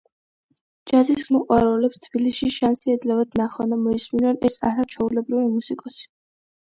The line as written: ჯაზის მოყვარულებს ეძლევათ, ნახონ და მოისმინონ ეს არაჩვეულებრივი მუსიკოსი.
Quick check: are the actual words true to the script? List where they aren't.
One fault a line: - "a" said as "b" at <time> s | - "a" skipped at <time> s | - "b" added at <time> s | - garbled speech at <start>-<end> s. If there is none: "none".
- "თბილისში შანსი" added at 2.1 s